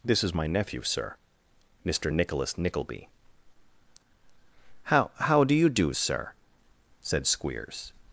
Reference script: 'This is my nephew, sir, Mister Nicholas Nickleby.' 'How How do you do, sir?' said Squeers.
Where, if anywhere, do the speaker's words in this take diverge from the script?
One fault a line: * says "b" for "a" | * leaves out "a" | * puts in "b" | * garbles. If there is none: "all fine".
all fine